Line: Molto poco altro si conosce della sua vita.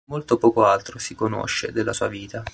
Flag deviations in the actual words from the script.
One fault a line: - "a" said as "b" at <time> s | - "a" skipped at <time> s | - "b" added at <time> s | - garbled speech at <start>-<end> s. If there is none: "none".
none